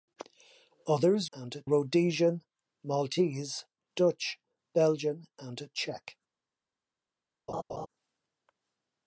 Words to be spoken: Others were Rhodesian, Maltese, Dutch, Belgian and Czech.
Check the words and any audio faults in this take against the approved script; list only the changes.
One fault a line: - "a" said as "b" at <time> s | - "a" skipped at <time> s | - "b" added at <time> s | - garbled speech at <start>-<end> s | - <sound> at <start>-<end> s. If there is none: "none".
- "were" said as "and" at 1.3 s
- laugh at 7.5-7.9 s